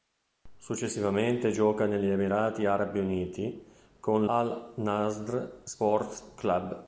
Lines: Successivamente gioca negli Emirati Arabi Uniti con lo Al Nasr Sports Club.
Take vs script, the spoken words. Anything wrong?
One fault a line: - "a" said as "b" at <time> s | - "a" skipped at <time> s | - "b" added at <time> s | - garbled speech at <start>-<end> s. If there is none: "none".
- "lo" skipped at 4.2 s